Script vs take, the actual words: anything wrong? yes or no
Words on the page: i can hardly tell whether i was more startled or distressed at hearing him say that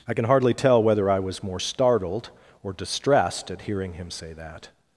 no